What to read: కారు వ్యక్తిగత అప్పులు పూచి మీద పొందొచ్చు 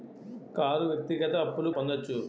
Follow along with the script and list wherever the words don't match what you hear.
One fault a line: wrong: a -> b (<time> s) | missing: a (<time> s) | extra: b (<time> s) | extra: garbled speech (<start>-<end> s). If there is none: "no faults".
missing: పూచి మీద (1.7 s)